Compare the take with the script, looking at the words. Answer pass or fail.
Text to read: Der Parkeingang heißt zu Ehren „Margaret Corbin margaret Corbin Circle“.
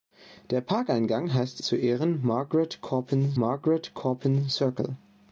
pass